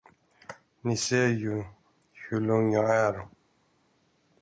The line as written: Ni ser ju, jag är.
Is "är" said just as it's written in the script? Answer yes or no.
yes